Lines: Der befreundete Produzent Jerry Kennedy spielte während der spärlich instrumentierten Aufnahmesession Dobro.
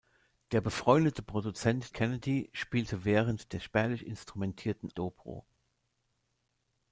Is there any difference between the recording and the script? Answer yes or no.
yes